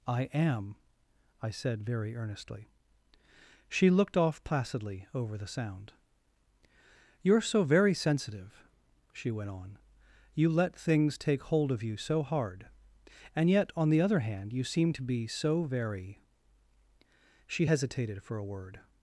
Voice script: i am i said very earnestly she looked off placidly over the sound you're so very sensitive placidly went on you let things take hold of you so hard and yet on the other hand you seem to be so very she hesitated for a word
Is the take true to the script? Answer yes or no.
no